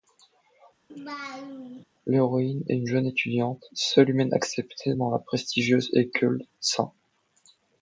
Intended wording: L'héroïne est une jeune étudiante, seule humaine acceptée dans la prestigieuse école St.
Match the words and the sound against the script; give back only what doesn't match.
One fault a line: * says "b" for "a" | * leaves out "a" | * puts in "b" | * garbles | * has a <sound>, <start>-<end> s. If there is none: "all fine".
* has a laugh, 0.9-1.8 s